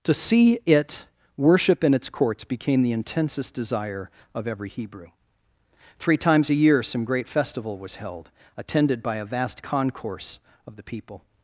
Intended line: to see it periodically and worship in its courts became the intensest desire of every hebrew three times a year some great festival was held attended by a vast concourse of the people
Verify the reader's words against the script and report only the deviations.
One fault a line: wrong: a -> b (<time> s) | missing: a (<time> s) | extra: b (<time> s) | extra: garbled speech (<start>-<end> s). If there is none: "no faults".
missing: periodically and (1.1 s)